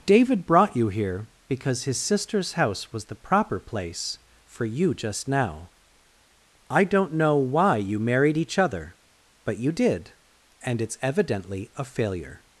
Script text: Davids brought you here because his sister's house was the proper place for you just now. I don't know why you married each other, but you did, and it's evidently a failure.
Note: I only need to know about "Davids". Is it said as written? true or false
false